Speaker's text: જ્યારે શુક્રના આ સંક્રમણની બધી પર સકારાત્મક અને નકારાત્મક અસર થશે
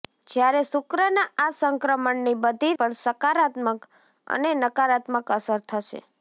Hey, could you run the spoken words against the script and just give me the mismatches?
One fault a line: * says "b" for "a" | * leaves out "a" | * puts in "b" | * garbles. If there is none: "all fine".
all fine